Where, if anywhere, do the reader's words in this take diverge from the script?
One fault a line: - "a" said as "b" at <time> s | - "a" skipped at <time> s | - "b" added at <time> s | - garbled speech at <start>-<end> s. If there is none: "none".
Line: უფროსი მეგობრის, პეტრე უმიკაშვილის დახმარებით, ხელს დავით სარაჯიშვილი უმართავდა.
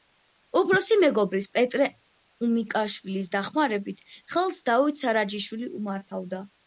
none